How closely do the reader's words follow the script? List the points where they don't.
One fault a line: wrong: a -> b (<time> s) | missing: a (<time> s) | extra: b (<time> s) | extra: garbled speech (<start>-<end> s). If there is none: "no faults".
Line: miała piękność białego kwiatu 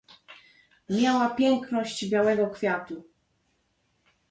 no faults